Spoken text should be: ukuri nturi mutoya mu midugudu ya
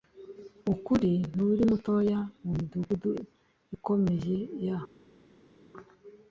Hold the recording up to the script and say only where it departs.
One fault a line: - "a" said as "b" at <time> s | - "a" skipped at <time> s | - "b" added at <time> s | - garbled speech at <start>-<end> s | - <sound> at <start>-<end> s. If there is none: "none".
- "ikomeye" added at 3.8 s